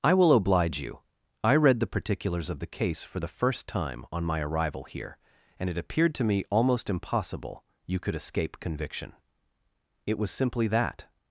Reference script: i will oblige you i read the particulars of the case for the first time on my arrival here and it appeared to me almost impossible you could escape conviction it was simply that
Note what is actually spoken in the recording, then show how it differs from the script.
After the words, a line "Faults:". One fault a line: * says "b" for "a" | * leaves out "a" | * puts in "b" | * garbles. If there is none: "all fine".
i will oblige you i read the particulars of the case for the first time on my arrival here and it appeared to me almost impossible you could escape conviction it was simply that
Faults:
all fine